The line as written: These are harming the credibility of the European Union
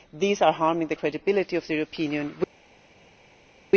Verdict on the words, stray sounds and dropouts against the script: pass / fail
pass